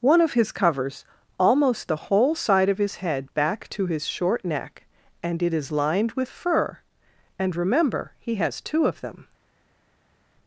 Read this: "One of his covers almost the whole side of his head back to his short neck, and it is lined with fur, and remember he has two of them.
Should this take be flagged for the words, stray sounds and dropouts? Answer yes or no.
no